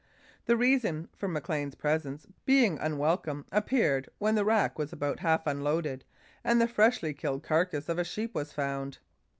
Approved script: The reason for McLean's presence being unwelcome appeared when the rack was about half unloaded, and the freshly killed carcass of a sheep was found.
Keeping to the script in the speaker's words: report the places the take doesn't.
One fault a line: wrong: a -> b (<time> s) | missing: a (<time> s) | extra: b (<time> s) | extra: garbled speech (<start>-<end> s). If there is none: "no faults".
no faults